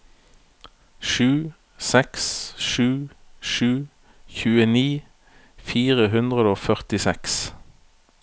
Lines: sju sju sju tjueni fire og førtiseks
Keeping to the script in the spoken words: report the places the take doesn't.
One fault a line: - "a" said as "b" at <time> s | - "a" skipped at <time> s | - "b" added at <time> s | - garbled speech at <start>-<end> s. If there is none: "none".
- "seks" added at 1.9 s
- "hundre" added at 6.1 s